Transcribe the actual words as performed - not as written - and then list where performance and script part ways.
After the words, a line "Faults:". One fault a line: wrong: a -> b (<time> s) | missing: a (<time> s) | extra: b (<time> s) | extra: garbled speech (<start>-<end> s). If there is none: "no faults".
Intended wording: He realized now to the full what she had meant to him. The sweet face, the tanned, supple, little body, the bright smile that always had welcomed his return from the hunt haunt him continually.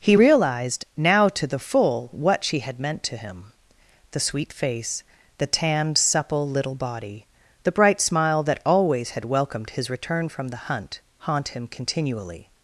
He realized now to the full what she had meant to him. The sweet face, the tanned, supple, little body, the bright smile that always had welcomed his return from the hunt haunt him continually.
Faults:
no faults